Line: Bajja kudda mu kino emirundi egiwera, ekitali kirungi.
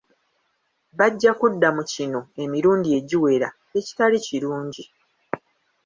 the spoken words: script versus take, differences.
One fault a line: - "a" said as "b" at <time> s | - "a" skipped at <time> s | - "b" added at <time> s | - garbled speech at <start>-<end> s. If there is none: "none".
none